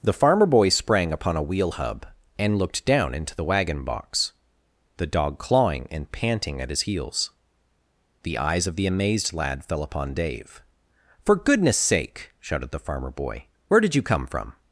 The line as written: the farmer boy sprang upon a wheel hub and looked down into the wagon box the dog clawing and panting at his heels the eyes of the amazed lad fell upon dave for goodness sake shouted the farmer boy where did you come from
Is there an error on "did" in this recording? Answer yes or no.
no